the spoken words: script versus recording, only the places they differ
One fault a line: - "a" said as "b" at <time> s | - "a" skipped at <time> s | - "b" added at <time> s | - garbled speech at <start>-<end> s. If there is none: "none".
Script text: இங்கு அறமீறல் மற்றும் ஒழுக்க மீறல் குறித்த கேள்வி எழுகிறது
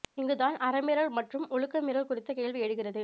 - "தான்" added at 0.3 s